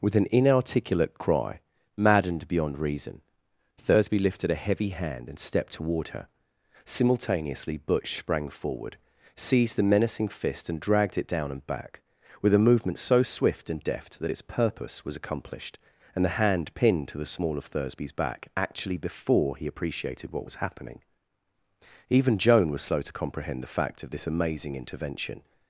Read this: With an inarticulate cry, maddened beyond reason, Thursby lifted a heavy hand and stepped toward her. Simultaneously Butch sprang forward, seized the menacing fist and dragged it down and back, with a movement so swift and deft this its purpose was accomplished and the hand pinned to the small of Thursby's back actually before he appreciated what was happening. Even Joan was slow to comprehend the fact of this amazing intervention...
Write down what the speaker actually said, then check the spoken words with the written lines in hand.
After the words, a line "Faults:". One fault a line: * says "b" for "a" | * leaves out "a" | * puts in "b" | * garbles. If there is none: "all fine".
With an inarticulate cry, maddened beyond reason, Thursby lifted a heavy hand and stepped toward her. Simultaneously Butch sprang forward, seized the menacing fist and dragged it down and back, with a movement so swift and deft that its purpose was accomplished and the hand pinned to the small of Thursby's back actually before he appreciated what was happening. Even Joan was slow to comprehend the fact of this amazing intervention...
Faults:
* says "that" for "this"